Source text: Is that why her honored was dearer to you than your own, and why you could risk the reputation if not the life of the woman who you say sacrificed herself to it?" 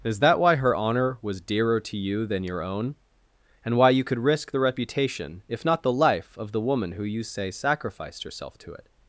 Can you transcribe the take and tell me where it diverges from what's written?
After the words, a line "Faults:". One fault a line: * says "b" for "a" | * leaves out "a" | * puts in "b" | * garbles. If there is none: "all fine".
Is that why her honor was dearer to you than your own, and why you could risk the reputation if not the life of the woman who you say sacrificed herself to it?"
Faults:
* says "honor" for "honored"